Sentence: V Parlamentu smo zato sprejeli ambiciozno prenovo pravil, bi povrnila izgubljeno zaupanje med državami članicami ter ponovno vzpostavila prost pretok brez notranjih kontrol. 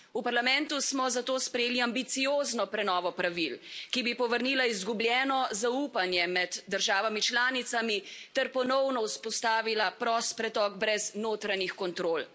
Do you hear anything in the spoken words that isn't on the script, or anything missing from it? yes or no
yes